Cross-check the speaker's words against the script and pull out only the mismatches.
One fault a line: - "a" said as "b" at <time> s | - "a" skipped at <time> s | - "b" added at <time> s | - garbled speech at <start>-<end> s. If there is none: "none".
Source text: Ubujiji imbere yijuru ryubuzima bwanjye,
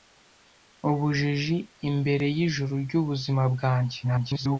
- garbled speech at 4.0-4.6 s